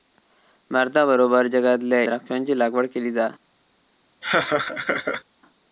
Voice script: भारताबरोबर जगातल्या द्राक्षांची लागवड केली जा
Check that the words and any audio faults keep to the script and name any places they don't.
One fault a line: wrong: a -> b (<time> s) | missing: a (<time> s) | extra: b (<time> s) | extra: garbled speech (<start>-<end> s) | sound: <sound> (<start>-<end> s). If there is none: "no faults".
sound: laugh (4.2-5.2 s)